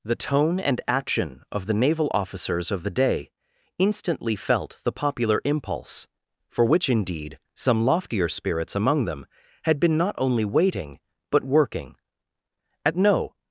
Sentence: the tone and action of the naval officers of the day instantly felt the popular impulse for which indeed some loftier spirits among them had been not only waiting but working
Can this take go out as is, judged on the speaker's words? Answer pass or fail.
fail